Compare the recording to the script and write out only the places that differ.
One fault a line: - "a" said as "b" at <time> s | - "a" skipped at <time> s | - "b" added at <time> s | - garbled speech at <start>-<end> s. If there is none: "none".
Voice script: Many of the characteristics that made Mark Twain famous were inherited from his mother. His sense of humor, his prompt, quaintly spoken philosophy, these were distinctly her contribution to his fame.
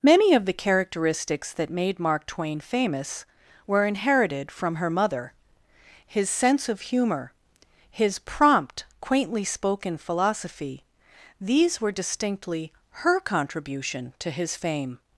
- "his" said as "her" at 4.8 s